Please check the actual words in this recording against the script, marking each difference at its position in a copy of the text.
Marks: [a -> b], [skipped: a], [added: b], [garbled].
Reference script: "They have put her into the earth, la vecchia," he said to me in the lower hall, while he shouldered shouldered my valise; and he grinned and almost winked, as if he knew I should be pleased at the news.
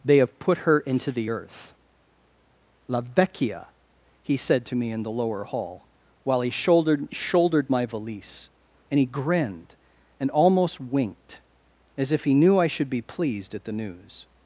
"They have put her into the earth, la vecchia," he said to me in the lower hall, while he shouldered shouldered my valise; and he grinned and almost winked, as if he knew I should be pleased at the news.